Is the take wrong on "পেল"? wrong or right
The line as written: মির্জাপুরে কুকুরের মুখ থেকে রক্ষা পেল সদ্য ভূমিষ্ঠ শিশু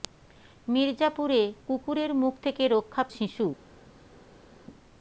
wrong